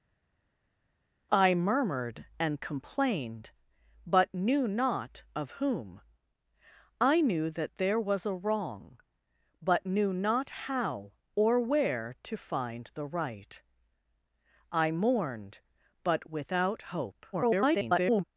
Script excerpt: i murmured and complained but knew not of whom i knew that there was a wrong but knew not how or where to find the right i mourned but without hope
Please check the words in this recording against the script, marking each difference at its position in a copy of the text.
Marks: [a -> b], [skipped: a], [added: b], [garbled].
i murmured and complained but knew not of whom i knew that there was a wrong but knew not how or where to find the right i mourned but without hope [garbled]